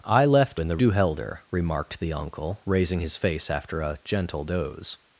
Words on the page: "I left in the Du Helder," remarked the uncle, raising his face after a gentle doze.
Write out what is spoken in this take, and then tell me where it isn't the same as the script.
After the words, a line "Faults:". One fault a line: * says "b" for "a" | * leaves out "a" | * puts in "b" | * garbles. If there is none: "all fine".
"I left in the Du Helder," remarked the uncle, raising his face after a gentle doze.
Faults:
all fine